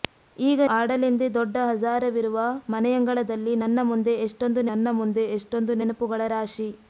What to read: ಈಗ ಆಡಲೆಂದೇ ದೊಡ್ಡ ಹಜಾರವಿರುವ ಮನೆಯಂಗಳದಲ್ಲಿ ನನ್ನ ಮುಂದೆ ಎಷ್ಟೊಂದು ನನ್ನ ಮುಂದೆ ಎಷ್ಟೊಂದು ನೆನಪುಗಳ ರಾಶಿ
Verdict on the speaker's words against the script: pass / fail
pass